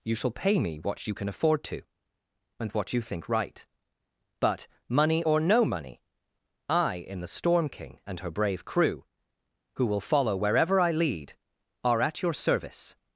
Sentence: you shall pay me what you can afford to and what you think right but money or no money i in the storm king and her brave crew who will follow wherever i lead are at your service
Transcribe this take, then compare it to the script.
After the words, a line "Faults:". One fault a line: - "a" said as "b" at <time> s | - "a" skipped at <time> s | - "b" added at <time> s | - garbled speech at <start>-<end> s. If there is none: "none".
you shall pay me what you can afford to and what you think right but money or no money i in the storm king and her brave crew who will follow wherever i lead are at your service
Faults:
none